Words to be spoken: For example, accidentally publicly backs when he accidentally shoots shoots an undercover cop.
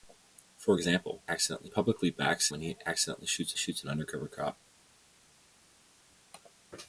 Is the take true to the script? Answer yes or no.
yes